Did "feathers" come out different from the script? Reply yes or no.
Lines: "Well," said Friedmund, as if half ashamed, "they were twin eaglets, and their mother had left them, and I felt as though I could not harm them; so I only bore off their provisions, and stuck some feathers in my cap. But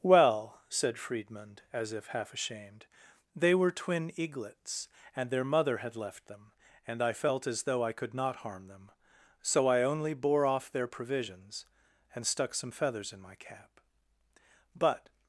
no